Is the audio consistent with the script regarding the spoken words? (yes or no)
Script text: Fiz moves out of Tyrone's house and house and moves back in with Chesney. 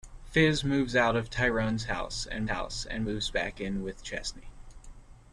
yes